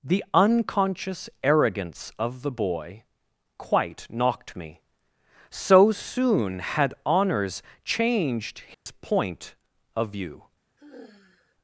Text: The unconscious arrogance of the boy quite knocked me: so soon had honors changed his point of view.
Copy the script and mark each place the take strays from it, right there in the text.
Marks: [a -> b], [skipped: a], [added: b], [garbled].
The unconscious arrogance of the boy quite knocked me: so soon had honors changed his point of view.